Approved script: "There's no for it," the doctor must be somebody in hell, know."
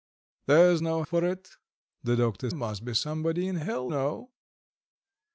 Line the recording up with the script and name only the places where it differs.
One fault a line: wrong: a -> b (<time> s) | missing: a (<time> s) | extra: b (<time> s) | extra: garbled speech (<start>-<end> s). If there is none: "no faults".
no faults